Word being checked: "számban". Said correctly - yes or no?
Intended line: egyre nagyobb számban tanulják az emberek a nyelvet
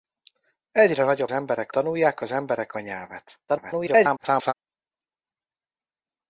no